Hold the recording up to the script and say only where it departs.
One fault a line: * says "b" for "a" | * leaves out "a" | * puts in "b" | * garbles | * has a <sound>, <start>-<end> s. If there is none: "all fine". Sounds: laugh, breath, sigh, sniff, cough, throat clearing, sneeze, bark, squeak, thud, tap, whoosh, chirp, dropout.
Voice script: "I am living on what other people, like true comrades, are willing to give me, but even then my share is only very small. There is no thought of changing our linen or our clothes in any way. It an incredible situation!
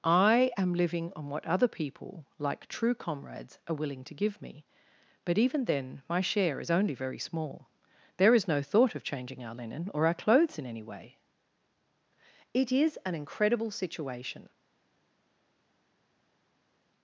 * puts in "is"